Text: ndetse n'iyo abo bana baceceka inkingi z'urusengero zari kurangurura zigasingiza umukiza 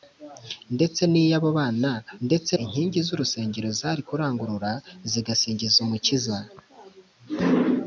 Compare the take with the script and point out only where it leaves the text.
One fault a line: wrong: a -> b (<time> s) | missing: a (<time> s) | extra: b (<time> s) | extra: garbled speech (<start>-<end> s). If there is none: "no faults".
wrong: baceceka -> ndetse (2.3 s)